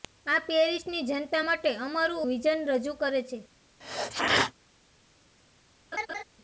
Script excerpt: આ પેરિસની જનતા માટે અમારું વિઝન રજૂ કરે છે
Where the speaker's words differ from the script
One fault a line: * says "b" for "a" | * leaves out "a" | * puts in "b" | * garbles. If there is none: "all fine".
all fine